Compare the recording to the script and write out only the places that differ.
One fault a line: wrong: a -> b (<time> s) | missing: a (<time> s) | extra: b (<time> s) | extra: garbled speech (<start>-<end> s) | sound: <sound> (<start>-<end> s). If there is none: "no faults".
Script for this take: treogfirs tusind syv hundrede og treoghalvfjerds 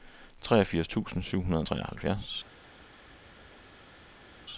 no faults